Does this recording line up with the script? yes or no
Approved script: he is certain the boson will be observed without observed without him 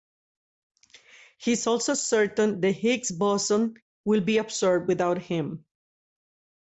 no